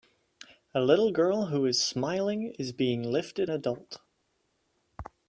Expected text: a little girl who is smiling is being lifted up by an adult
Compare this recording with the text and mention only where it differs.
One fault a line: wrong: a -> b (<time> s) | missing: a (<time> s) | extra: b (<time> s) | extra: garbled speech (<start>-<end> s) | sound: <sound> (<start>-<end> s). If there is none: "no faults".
missing: up by an (3.5 s)